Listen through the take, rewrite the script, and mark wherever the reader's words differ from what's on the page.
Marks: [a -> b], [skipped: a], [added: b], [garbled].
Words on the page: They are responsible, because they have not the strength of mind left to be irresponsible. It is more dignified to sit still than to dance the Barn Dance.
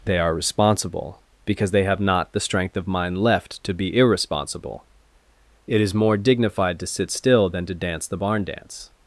They are responsible, because they have not the strength of mind left to be irresponsible. It is more dignified to sit still than to dance the Barn Dance.